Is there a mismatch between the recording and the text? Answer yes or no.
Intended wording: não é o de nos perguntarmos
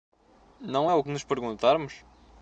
no